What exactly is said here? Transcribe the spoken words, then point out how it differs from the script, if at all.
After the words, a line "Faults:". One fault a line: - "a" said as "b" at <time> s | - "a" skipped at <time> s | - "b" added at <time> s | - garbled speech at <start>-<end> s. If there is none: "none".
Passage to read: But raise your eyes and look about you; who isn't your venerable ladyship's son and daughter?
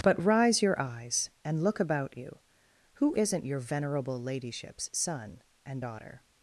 But rise your eyes and look about you; who isn't your venerable ladyship's son and daughter?
Faults:
- "raise" said as "rise" at 0.2 s